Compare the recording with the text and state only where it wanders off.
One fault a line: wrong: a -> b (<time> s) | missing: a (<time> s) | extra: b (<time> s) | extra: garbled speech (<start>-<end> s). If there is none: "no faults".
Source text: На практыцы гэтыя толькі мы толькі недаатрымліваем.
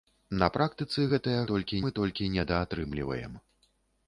no faults